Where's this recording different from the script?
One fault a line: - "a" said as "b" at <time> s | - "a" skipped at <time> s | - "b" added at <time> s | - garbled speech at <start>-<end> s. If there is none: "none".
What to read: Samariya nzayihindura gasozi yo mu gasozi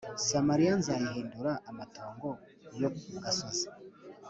- "gasozi" said as "amatongo" at 1.7 s